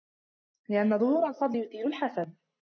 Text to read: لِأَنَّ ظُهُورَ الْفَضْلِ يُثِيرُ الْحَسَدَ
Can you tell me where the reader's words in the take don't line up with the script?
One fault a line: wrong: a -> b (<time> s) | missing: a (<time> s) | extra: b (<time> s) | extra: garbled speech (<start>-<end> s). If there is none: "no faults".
no faults